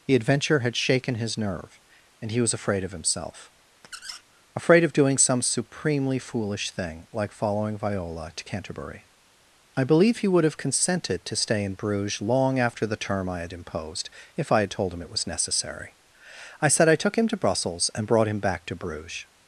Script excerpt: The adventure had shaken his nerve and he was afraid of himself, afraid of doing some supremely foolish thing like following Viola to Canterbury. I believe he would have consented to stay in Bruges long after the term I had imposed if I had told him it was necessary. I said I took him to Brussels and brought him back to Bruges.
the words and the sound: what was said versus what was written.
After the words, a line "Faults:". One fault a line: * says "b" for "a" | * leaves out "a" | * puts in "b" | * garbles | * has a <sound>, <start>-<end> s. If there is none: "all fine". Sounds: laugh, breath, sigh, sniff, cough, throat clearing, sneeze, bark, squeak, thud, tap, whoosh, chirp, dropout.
The adventure had shaken his nerve and he was afraid of himself, afraid of doing some supremely foolish thing like following Viola to Canterbury. I believe he would have consented to stay in Bruges long after the term I had imposed if I had told him it was necessary. I said I took him to Brussels and brought him back to Bruges.
Faults:
* has a squeak, 3.8-4.2 s